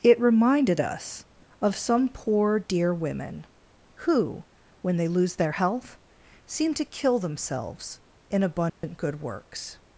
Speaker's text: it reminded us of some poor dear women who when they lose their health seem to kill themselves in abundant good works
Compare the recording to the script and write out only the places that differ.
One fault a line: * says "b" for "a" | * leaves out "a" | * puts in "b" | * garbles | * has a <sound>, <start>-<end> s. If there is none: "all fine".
* has a dropout, 8.7-8.8 s